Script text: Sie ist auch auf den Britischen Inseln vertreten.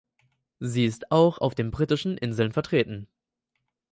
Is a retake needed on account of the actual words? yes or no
no